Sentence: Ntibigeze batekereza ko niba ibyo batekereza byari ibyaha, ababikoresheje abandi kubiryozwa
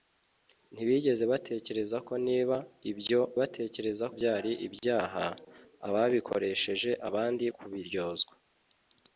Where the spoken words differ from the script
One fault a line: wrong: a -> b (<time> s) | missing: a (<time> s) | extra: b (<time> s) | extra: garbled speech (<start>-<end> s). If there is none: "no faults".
no faults